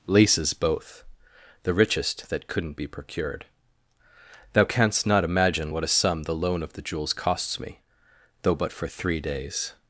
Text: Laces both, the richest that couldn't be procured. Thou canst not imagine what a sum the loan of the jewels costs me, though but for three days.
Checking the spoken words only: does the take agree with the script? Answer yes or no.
yes